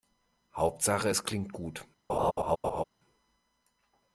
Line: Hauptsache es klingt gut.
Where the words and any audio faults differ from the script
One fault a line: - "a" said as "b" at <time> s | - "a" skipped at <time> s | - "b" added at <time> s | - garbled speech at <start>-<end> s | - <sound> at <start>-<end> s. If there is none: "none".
- laugh at 2.1-2.8 s